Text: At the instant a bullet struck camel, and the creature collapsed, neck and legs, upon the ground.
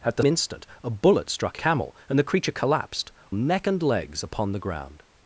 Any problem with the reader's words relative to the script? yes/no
no